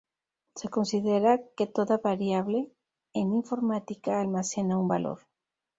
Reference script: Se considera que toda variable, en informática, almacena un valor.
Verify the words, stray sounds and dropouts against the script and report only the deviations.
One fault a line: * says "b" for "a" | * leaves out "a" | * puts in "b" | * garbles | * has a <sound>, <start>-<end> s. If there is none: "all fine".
all fine